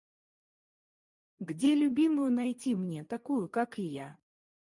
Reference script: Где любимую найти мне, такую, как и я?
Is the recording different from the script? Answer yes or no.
no